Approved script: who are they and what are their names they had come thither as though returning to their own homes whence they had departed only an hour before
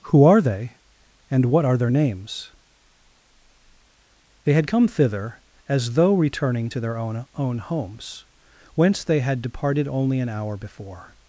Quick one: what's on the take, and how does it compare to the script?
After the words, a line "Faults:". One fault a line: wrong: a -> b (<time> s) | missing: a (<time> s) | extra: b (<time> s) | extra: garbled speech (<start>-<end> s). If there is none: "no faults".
who are they and what are their names they had come thither as though returning to their own own homes whence they had departed only an hour before
Faults:
extra: own (7.4 s)